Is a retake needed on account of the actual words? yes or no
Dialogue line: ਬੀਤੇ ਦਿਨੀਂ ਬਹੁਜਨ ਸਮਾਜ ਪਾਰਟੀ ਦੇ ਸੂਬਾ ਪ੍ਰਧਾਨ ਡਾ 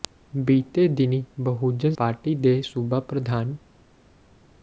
yes